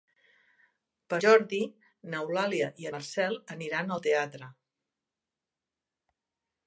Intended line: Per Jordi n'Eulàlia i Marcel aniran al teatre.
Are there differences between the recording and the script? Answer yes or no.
no